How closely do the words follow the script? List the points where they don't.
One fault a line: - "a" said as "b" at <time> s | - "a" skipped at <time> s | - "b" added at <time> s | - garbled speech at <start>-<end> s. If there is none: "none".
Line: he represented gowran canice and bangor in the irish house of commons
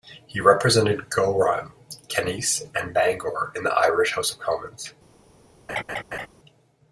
none